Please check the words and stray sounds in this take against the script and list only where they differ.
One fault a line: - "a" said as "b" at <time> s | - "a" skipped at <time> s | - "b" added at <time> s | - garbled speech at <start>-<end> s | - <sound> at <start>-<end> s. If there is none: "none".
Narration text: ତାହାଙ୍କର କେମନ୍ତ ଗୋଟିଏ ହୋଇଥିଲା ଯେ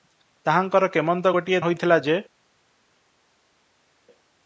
none